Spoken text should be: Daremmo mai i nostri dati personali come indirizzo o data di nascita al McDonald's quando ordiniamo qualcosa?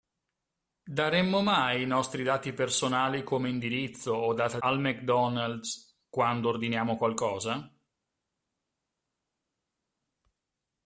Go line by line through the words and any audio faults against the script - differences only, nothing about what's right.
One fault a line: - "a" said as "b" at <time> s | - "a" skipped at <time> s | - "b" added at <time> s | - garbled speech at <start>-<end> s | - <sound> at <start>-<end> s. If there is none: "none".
- "di nascita" skipped at 4.6 s